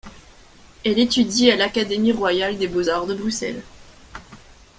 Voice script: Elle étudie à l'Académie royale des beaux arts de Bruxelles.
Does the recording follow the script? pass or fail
pass